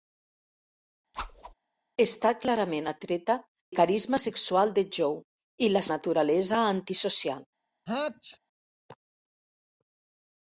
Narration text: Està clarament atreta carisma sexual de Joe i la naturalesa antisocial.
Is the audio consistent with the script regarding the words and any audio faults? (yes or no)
no